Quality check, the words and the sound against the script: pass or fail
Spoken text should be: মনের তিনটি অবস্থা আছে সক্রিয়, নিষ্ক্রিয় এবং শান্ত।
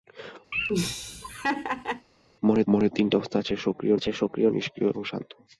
fail